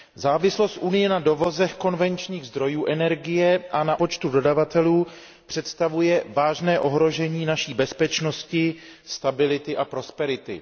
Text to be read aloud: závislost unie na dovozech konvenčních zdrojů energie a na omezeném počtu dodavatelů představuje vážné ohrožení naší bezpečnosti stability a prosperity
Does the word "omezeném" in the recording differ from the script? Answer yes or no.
yes